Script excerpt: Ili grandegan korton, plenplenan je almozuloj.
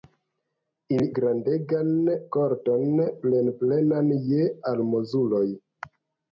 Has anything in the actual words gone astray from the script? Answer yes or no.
no